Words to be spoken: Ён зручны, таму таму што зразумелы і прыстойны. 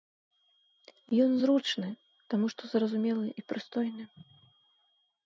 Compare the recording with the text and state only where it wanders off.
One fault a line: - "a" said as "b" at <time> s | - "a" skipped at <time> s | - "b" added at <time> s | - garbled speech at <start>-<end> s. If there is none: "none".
- "таму" skipped at 2.5 s